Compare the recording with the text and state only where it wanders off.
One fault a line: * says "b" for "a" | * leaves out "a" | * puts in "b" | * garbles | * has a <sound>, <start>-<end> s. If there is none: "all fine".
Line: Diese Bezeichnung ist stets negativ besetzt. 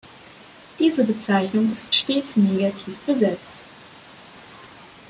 all fine